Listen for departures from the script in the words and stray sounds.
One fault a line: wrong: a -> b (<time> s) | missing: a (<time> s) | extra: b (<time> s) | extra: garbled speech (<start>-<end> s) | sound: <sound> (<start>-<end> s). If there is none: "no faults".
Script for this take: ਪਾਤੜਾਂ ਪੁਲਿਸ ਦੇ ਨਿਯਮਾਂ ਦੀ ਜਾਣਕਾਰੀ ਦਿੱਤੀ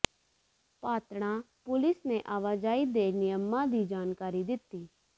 extra: ਨੇ ਆਵਾਜਾਈ (2.1 s)